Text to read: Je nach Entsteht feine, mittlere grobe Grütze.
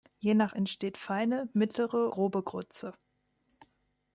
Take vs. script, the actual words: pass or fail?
pass